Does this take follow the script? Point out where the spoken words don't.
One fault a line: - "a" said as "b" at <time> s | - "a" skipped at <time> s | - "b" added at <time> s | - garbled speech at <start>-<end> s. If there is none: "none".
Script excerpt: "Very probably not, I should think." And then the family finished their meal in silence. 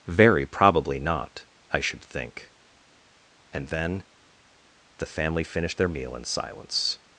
none